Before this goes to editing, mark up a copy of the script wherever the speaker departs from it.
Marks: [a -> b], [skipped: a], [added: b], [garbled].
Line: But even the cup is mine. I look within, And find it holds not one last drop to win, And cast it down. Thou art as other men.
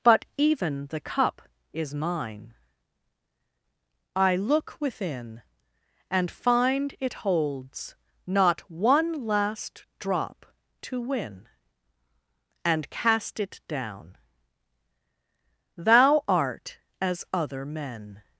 But even the cup is mine. I look within, And find it holds not one last drop to win, And cast it down. Thou art as other men.